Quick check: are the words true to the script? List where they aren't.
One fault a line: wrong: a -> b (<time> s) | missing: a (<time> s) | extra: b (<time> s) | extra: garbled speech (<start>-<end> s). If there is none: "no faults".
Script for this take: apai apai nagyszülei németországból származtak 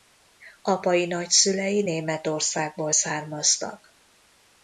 missing: apai (1.1 s)